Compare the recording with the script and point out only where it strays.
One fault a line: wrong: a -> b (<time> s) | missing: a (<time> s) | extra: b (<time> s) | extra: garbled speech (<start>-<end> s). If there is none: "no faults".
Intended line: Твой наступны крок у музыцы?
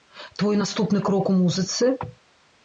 no faults